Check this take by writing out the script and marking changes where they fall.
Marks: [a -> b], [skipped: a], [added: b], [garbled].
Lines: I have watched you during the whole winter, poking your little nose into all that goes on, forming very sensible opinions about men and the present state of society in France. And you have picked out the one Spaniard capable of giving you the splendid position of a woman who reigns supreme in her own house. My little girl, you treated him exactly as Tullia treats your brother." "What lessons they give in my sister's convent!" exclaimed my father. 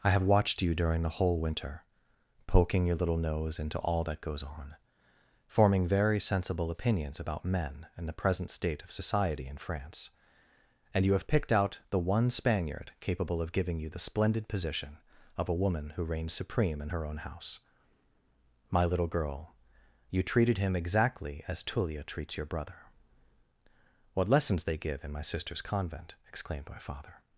I have watched you during the whole winter, poking your little nose into all that goes on, forming very sensible opinions about men and the present state of society in France. And you have picked out the one Spaniard capable of giving you the splendid position of a woman who reigns supreme in her own house. My little girl, you treated him exactly as Tullia treats your brother." "What lessons they give in my sister's convent!" exclaimed my father.